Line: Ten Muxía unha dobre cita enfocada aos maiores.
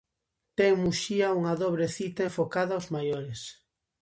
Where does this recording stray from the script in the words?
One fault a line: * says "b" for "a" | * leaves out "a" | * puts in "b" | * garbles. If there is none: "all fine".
all fine